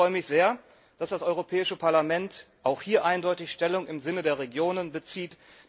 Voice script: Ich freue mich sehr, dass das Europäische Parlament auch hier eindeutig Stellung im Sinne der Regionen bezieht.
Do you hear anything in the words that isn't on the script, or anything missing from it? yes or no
no